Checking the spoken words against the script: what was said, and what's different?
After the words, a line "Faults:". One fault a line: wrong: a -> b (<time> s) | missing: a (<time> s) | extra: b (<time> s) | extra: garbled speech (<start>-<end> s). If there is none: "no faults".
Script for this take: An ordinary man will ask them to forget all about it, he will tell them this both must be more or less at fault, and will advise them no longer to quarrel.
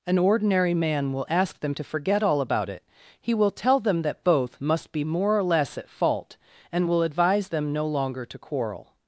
An ordinary man will ask them to forget all about it, he will tell them that both must be more or less at fault, and will advise them no longer to quarrel.
Faults:
wrong: this -> that (4.0 s)